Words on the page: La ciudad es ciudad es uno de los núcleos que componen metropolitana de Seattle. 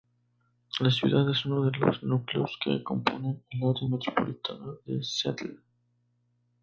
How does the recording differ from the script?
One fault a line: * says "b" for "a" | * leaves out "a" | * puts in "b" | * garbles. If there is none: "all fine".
* leaves out "ciudad es"
* puts in "el área"